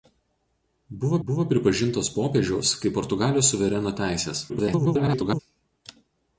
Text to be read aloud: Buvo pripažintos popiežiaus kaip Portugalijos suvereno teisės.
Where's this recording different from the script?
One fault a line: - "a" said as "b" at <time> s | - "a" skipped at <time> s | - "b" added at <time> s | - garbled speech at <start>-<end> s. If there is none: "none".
- "buvo" added at 1.3 s
- garbled speech at 4.5-5.4 s